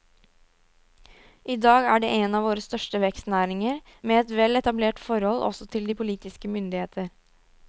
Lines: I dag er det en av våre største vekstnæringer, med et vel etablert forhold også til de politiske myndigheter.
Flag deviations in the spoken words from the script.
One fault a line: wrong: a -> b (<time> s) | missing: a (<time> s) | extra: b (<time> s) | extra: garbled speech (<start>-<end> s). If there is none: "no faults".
no faults